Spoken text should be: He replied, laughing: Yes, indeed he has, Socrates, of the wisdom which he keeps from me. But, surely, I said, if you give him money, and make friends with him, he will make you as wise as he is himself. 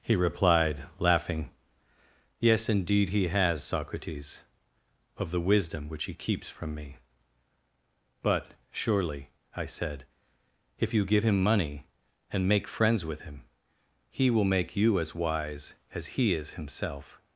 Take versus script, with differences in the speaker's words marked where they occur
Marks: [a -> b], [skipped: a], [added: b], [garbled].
He replied, laughing: Yes, indeed he has, Socrates, of the wisdom which he keeps from me. But, surely, I said, if you give him money, and make friends with him, he will make you as wise as he is himself.